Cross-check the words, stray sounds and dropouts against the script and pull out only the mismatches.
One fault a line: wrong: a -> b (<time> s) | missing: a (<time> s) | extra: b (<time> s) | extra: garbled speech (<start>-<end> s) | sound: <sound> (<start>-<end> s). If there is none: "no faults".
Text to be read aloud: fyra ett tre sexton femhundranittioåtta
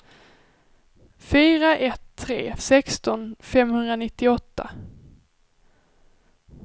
no faults